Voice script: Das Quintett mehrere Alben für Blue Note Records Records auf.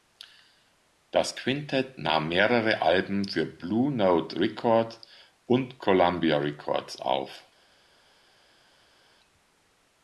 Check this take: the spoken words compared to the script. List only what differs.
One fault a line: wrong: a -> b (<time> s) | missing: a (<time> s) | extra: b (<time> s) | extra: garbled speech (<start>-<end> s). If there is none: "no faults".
extra: nahm (2.0 s)
extra: und Columbia (5.4 s)